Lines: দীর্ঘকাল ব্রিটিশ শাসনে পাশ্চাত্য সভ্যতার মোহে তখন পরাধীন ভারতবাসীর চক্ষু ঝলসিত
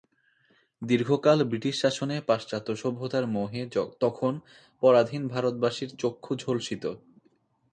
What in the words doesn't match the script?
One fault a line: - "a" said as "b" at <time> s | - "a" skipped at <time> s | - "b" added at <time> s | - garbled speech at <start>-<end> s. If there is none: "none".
none